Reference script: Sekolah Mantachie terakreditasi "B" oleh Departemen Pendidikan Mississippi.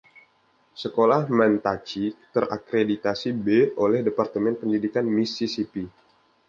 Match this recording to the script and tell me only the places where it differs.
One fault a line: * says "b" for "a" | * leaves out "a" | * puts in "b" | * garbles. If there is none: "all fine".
all fine